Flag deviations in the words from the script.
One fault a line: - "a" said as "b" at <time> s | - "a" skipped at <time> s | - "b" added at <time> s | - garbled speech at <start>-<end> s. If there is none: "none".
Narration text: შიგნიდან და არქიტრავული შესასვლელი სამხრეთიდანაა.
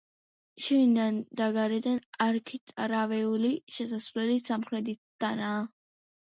- "გარედან" added at 1.6 s